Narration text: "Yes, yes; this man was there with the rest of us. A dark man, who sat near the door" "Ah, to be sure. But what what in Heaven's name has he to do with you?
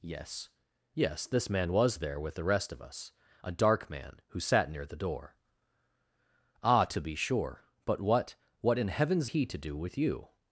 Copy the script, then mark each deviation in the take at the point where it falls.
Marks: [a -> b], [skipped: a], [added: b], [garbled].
"Yes, yes; this man was there with the rest of us. A dark man, who sat near the door" "Ah, to be sure. But what what in Heaven's [skipped: name has] he to do with you?